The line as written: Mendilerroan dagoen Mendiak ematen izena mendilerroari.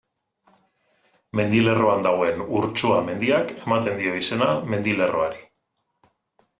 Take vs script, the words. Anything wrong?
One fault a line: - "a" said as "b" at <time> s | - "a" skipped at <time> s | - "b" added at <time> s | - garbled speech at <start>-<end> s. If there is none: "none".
- "Urtsua" added at 2.6 s
- "dio" added at 4.0 s